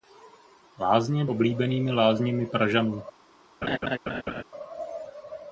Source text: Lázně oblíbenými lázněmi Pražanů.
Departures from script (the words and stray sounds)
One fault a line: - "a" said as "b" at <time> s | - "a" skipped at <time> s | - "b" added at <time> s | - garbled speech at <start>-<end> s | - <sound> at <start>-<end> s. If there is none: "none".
- laugh at 3.6-4.4 s